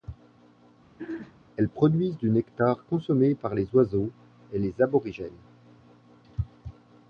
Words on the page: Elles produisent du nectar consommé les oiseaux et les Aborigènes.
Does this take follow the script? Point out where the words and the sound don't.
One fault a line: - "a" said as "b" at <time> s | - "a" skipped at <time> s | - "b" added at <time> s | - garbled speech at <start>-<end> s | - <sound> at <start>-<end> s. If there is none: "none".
- throat clearing at 1.0-1.4 s
- "par" added at 3.3 s